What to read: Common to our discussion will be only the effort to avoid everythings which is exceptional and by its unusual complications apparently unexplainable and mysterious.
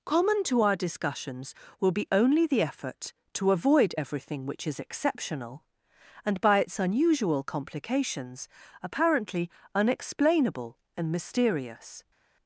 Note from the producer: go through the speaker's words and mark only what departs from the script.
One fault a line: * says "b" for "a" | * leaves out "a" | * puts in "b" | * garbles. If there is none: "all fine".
* says "discussions" for "discussion"
* says "everything" for "everythings"